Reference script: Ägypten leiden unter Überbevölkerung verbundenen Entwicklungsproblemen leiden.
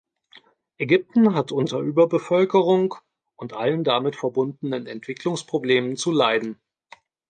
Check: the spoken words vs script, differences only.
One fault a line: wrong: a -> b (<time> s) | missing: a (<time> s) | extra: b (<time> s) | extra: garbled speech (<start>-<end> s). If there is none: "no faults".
wrong: leiden -> hat (1.4 s)
extra: und allen damit (3.4 s)
extra: zu (6.0 s)